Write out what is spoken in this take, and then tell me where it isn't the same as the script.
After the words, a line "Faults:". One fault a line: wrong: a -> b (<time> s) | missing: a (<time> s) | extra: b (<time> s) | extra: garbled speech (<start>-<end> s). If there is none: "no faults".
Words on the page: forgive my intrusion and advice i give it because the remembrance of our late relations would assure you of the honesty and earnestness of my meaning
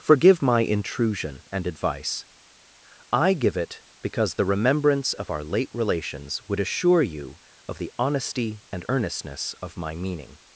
forgive my intrusion and advice i give it because the remembrance of our late relations would assure you of the honesty and earnestness of my meaning
Faults:
no faults